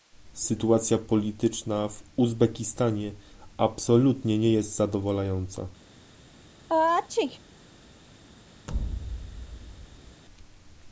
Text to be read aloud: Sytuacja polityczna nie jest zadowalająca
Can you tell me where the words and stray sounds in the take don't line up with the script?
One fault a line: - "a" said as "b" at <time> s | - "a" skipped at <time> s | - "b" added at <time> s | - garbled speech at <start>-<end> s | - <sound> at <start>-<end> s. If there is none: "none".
- "w Uzbekistanie absolutnie" added at 1.9 s
- sneeze at 6.7-7.4 s
- thud at 8.7-10.2 s